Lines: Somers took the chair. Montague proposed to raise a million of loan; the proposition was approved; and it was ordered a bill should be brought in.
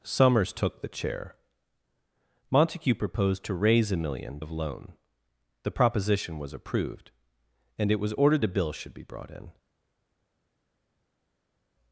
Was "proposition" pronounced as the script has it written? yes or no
yes